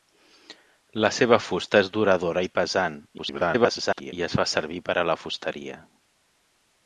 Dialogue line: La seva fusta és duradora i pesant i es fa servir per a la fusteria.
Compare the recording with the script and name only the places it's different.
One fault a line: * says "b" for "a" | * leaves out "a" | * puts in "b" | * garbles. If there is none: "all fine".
* garbles